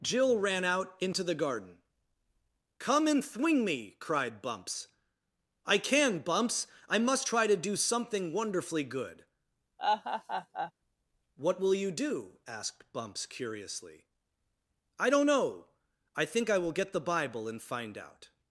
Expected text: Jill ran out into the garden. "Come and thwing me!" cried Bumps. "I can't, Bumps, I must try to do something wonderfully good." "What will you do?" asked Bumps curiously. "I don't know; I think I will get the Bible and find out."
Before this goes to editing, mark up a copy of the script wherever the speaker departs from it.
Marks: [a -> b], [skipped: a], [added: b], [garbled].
Jill ran out into the garden. "Come and thwing me!" cried Bumps. "I [can't, -> can] Bumps, I must try to do something wonderfully good." "What will you do?" asked Bumps curiously. "I don't know; I think I will get the Bible and find out."